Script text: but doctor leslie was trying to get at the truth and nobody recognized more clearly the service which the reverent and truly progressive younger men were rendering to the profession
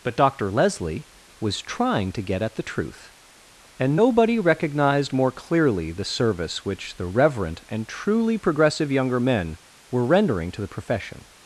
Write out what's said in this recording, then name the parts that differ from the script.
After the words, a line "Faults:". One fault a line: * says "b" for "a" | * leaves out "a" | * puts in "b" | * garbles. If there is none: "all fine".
but doctor leslie was trying to get at the truth and nobody recognized more clearly the service which the reverent and truly progressive younger men were rendering to the profession
Faults:
all fine